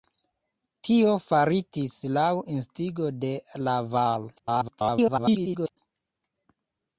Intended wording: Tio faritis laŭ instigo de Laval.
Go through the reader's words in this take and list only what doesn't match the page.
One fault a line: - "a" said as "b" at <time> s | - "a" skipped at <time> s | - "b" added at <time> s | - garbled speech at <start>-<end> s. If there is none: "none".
- garbled speech at 4.4-5.8 s